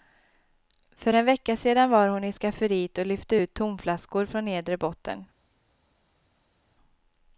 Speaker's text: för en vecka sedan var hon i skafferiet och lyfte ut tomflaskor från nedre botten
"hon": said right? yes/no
yes